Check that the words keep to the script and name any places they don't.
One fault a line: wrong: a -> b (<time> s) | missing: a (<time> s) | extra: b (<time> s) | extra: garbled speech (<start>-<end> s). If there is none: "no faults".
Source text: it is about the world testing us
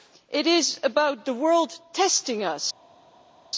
no faults